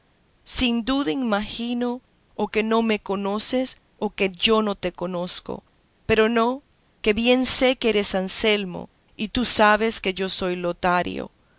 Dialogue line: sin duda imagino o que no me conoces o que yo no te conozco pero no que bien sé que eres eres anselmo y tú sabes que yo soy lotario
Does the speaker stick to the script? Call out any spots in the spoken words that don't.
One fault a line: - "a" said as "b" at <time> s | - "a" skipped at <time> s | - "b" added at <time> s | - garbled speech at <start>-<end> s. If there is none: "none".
- "eres" skipped at 8.1 s